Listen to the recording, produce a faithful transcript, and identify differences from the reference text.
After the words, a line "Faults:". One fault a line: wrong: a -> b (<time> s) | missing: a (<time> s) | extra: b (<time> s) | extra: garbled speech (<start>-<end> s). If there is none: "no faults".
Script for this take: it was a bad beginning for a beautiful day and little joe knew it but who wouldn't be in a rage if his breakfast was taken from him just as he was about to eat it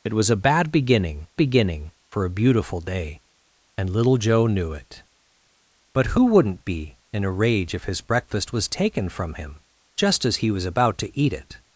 it was a bad beginning beginning for a beautiful day and little joe knew it but who wouldn't be in a rage if his breakfast was taken from him just as he was about to eat it
Faults:
extra: beginning (1.4 s)